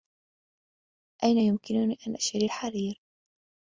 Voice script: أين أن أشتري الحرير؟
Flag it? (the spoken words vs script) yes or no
yes